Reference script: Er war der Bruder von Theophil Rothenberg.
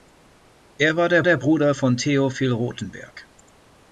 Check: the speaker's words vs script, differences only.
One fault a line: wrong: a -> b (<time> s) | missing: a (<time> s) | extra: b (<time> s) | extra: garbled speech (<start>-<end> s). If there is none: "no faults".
extra: der (1.2 s)